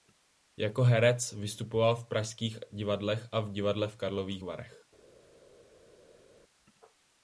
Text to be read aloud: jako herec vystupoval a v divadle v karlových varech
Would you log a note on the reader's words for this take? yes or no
yes